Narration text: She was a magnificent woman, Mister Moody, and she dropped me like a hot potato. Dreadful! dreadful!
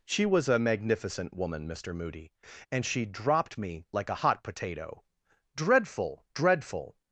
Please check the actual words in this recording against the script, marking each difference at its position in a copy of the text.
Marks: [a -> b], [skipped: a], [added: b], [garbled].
She was a magnificent woman, Mister Moody, and she dropped me like a hot potato. Dreadful! dreadful!